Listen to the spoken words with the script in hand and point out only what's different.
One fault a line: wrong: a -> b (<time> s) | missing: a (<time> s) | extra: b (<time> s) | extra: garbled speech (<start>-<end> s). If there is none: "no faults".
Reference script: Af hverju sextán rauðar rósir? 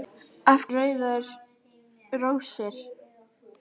missing: hverju sextán (0.6 s)